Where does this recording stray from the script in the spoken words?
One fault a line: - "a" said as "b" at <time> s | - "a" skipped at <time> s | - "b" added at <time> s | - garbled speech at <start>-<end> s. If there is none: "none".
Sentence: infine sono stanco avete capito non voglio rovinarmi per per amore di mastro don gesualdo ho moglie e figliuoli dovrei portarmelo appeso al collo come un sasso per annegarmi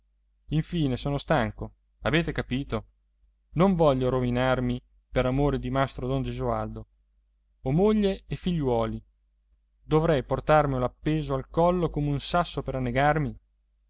- "per" skipped at 5.2 s